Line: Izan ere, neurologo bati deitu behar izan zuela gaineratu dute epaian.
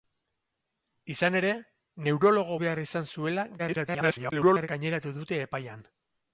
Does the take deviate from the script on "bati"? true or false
true